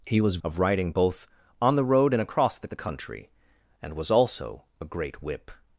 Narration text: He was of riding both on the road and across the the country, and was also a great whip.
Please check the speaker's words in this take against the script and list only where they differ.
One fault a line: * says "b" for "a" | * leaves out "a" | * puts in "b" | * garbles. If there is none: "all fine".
all fine